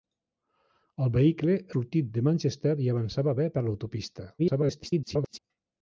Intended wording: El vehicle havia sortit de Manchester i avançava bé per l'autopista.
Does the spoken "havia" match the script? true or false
false